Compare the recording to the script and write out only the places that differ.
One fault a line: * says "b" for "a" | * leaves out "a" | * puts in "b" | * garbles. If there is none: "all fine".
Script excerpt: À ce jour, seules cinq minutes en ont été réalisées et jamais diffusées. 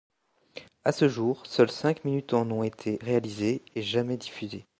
all fine